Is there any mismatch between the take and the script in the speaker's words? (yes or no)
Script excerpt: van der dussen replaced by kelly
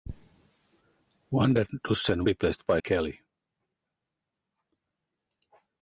no